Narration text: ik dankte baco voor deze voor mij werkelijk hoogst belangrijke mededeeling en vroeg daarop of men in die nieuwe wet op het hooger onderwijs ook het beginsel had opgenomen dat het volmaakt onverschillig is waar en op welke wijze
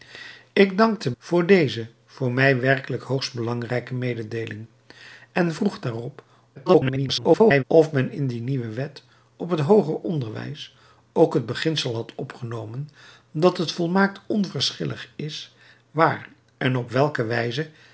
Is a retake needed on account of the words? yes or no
yes